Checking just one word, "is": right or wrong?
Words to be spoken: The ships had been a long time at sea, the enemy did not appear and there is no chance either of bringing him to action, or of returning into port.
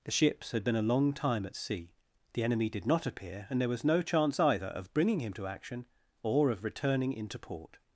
wrong